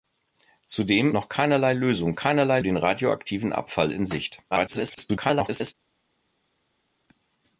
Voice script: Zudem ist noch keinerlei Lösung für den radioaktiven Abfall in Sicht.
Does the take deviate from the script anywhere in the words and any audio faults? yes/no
yes